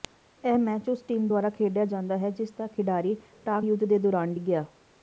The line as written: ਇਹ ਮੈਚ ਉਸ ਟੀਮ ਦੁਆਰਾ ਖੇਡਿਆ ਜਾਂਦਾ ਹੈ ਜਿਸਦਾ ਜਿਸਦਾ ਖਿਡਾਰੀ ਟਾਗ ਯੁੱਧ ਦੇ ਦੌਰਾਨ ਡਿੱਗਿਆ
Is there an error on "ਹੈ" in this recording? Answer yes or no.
no